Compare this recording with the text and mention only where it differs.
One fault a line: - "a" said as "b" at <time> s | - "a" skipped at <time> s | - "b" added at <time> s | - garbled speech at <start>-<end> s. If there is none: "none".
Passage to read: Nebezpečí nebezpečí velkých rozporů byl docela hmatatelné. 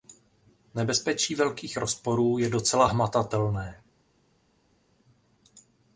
- "nebezpečí" skipped at 1.4 s
- "byl" said as "je" at 2.4 s